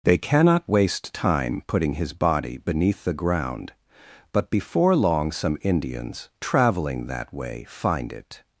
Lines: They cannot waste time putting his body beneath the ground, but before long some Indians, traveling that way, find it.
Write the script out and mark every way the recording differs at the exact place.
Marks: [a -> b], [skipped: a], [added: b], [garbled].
They cannot waste time putting his body beneath the ground, but before long some Indians, traveling that way, find it.